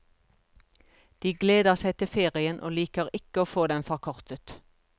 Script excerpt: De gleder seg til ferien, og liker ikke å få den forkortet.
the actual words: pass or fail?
pass